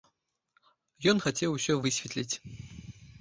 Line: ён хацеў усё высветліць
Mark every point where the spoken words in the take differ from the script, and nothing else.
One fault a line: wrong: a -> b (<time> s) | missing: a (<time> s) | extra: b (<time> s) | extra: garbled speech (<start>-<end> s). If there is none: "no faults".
no faults